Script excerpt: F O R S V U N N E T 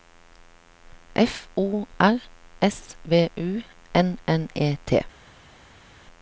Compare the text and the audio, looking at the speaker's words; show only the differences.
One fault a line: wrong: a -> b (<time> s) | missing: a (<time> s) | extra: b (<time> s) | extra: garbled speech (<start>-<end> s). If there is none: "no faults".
no faults